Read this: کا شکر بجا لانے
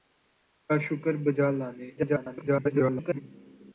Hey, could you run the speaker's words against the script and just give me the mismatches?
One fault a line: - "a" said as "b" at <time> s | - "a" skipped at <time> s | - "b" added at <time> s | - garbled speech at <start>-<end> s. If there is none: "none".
- garbled speech at 2.0-3.2 s